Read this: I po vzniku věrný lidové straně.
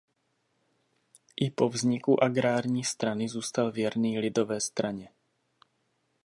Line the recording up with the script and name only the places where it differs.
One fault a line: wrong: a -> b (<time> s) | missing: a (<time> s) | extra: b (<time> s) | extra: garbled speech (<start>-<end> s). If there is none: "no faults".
extra: agrární strany zůstal (2.2 s)